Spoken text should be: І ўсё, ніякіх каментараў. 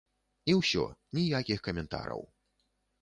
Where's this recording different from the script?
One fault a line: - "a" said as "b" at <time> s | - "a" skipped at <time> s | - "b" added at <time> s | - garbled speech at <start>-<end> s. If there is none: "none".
none